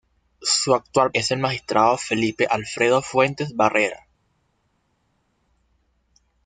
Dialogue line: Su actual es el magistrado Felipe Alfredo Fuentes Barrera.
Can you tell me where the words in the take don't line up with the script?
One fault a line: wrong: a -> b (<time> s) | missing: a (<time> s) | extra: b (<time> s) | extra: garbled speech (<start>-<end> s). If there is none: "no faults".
no faults